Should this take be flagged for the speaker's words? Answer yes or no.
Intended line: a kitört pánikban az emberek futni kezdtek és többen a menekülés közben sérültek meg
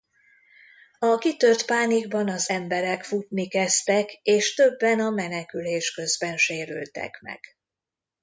no